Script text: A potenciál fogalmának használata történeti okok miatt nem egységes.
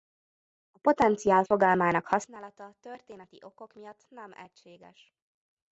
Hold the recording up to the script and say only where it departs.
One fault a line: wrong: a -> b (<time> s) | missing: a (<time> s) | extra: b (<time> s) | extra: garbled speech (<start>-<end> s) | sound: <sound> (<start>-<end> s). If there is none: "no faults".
no faults